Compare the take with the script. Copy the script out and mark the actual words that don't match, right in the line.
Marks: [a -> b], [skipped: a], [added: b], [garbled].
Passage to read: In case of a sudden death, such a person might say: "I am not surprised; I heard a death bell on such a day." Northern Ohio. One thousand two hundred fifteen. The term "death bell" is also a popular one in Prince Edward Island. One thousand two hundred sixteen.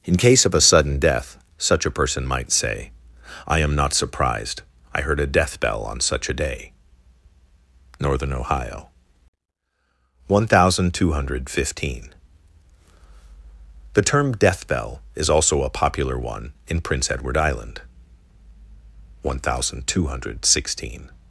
In case of a sudden death, such a person might say: "I am not surprised; I heard a death bell on such a day." Northern Ohio. One thousand two hundred fifteen. The term "death bell" is also a popular one in Prince Edward Island. One thousand two hundred sixteen.